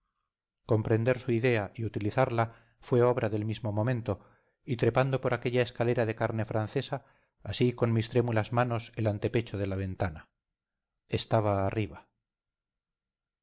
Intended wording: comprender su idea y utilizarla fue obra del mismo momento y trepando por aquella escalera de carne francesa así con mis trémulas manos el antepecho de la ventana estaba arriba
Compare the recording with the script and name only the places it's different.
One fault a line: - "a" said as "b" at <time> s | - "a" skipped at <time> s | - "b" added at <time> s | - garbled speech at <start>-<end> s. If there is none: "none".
none